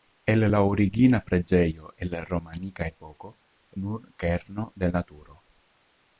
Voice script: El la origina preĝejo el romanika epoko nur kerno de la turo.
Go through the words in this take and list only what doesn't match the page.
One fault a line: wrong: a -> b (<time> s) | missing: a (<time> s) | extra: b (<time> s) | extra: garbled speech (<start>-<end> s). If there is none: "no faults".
no faults